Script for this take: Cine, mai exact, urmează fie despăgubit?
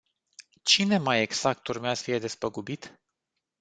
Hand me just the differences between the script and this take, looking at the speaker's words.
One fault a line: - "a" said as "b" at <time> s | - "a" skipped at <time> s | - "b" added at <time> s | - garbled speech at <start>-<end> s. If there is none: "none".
none